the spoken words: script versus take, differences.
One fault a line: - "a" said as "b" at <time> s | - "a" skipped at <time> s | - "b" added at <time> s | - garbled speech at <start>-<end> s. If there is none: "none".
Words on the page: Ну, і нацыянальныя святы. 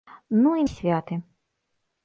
- "нацыянальныя" skipped at 0.6 s